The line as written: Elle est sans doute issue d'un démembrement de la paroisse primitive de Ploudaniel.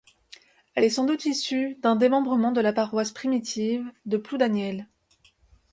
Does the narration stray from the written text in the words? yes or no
no